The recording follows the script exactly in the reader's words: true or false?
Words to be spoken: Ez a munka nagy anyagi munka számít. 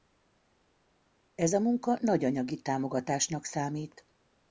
false